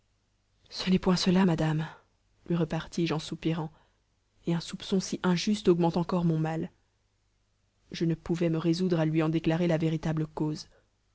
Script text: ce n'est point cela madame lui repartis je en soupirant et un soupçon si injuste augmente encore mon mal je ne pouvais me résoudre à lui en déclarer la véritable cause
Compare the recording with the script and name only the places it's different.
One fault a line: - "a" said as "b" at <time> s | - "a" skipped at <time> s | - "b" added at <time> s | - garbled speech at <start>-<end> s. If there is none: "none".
none